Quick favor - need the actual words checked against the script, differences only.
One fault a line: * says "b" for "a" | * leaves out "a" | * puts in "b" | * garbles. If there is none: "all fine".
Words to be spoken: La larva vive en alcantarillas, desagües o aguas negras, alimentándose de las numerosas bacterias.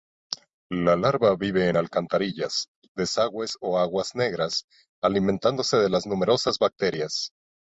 all fine